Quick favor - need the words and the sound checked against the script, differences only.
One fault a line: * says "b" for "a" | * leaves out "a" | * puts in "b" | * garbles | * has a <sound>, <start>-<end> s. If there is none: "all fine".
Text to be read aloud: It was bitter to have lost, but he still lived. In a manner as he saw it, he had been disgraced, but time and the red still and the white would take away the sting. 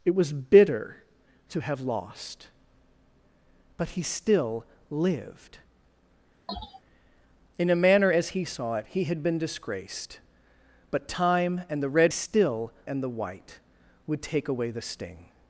* has a sneeze, 6.5-6.8 s